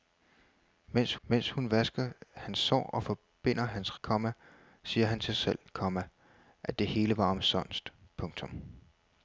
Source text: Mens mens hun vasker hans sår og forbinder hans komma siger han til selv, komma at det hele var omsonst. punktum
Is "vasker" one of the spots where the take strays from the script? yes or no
no